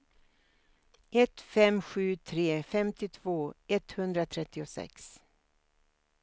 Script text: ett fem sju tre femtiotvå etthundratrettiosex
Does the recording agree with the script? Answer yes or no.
yes